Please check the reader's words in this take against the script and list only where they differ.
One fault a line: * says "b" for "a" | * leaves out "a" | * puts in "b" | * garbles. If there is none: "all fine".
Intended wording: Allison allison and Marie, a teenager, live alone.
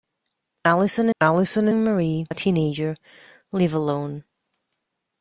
all fine